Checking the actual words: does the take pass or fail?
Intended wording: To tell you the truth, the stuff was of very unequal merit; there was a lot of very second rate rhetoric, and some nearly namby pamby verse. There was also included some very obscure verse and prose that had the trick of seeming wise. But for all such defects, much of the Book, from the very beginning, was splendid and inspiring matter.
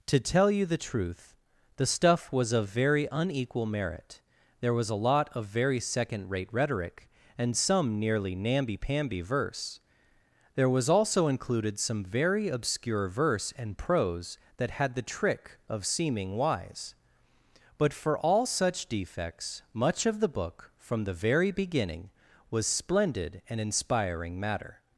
pass